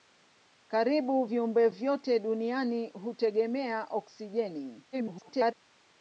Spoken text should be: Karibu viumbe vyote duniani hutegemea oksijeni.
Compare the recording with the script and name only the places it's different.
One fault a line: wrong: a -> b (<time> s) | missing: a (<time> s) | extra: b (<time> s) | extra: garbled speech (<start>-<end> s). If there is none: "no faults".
extra: garbled speech (4.9-5.5 s)